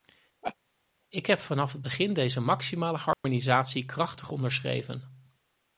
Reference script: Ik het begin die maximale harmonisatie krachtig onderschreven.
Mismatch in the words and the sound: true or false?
true